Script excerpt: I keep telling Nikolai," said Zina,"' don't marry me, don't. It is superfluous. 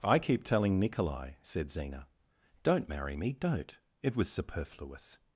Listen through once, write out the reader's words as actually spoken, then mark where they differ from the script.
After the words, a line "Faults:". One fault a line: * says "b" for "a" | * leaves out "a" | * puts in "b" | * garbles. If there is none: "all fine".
I keep telling Nikolai," said Zina,"' don't marry me, don't. It was superfluous.
Faults:
* says "was" for "is"